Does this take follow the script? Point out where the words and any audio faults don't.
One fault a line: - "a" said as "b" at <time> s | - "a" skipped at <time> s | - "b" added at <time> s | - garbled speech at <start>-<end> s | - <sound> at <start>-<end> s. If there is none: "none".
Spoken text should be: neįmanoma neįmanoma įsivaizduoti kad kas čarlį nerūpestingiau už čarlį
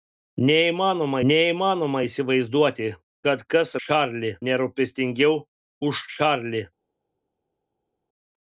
none